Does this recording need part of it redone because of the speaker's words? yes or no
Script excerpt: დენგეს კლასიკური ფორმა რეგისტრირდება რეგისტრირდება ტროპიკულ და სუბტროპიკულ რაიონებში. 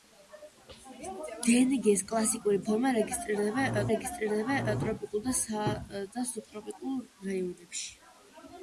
no